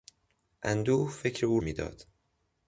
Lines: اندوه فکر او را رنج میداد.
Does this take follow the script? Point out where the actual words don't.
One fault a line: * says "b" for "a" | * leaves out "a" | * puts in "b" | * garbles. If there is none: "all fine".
* leaves out "را رنج"